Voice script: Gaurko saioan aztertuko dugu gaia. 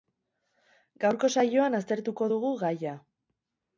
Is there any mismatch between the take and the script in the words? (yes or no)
no